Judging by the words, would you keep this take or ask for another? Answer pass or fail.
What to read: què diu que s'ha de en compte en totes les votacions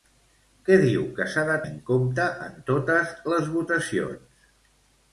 pass